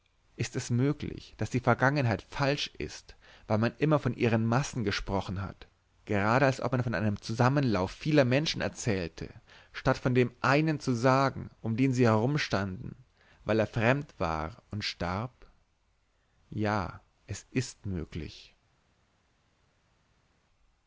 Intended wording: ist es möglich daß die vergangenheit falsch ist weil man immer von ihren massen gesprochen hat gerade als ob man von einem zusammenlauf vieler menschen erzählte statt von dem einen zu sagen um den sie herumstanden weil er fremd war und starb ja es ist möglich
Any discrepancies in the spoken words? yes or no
no